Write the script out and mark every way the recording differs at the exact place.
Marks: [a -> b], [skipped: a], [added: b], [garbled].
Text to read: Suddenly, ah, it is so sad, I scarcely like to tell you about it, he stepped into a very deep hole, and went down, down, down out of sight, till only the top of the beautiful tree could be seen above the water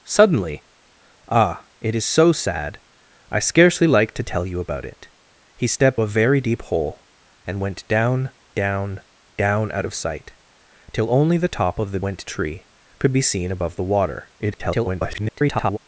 Suddenly, ah, it is so sad, I scarcely like to tell you about it, he stepped [skipped: into] a very deep hole, and went down, down, down out of sight, till only the top of the [beautiful -> went] tree could be seen above the water [garbled]